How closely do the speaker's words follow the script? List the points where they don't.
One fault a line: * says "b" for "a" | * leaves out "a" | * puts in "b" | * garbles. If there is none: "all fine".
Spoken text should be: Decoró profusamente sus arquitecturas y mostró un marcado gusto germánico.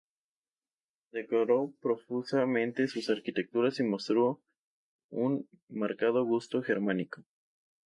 all fine